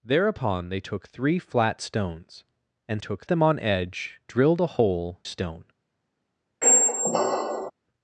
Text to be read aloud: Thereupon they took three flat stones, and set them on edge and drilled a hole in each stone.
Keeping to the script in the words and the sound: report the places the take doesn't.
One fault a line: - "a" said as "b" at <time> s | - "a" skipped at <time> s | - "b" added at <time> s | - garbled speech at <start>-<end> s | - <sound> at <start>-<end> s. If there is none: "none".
- "set" said as "took" at 3.0 s
- "and" skipped at 4.2 s
- "in each" skipped at 5.2 s
- squeak at 6.6-7.7 s